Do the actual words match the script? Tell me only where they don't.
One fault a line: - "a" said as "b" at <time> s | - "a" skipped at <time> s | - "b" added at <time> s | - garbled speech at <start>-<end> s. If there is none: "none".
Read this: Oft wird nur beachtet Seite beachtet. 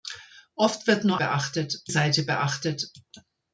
none